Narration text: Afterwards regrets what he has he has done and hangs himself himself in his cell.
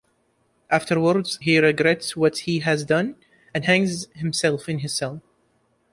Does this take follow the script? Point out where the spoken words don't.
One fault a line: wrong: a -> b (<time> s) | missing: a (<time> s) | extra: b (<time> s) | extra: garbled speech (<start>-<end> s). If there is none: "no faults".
extra: he (1.4 s)
missing: he has (2.8 s)
missing: himself (4.7 s)